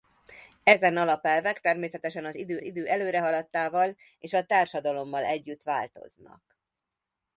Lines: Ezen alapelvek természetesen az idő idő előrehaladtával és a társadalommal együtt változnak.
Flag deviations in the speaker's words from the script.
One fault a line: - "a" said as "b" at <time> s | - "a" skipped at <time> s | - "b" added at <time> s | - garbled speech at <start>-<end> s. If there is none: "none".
none